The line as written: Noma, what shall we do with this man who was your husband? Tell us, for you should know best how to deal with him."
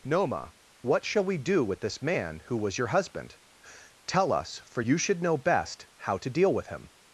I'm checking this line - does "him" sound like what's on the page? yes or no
yes